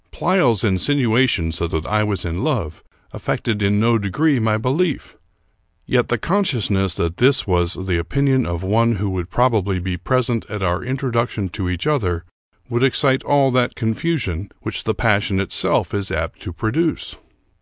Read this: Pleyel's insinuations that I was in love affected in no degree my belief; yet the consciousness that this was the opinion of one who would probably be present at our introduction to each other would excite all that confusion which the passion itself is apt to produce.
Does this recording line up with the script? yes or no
no